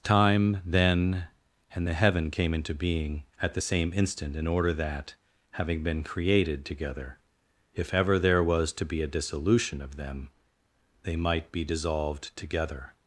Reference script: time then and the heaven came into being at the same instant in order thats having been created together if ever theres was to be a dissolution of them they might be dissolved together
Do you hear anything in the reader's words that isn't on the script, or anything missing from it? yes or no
yes